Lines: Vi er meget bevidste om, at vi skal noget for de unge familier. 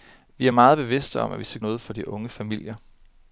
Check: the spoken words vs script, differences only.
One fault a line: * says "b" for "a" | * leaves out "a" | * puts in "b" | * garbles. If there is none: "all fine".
all fine